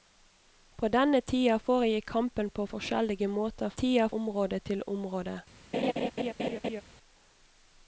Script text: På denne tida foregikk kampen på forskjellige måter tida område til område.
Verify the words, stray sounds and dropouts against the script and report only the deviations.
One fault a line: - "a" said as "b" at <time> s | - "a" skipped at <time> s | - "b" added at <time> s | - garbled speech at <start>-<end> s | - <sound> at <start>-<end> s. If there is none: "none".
- laugh at 5.7-6.8 s